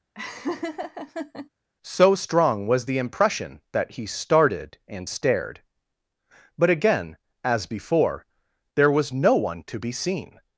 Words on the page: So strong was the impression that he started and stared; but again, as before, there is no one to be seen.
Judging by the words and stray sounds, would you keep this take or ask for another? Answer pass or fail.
fail